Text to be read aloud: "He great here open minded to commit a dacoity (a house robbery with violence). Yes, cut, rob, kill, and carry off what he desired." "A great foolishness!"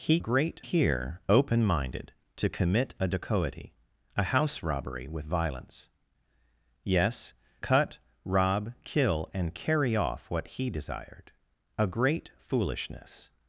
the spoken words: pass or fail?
pass